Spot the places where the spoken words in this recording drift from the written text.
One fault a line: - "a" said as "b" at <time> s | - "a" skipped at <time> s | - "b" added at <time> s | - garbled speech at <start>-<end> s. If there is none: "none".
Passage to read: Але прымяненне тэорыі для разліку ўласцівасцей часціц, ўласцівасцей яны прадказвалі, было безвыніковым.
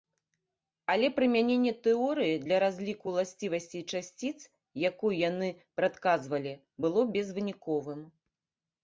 - "ўласцівасцей" said as "якую" at 4.9 s